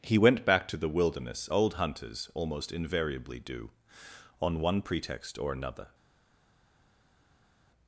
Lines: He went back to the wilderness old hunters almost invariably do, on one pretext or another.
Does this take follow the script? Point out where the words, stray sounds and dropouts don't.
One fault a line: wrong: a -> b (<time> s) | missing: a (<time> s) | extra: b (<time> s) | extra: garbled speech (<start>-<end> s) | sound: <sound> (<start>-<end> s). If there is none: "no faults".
no faults